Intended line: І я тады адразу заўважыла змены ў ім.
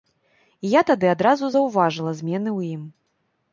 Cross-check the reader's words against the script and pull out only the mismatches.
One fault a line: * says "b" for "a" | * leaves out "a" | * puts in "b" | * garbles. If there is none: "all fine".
all fine